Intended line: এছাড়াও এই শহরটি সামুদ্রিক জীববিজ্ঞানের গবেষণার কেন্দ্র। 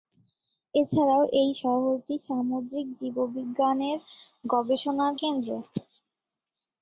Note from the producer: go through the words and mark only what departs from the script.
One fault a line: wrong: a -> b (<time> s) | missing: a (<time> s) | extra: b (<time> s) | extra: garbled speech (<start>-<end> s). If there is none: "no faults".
no faults